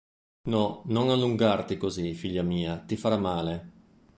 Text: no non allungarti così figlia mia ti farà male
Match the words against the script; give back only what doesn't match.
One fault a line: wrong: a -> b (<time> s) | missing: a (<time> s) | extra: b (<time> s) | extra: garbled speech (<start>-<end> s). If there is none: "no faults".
no faults